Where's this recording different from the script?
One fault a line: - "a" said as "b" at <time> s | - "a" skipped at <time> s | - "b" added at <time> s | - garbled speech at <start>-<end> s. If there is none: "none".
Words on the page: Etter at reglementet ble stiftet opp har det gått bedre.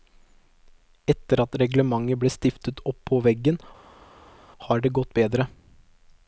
- "på veggen" added at 3.1 s